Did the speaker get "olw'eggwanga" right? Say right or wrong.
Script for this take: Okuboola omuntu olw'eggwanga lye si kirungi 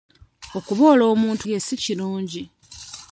wrong